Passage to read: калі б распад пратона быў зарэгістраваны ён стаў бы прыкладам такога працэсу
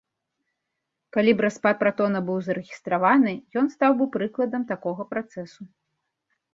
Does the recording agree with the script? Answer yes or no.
yes